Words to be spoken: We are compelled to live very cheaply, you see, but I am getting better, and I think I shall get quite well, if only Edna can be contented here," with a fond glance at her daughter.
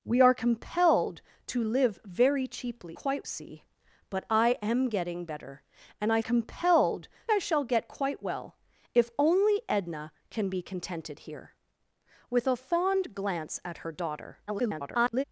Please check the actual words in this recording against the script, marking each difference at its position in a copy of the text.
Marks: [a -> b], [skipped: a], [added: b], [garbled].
We are compelled to live very cheaply, [you -> quite] see, but I am getting better, and I [think -> compelled] I shall get quite well, if only Edna can be contented here," with a fond glance at her daughter. [garbled]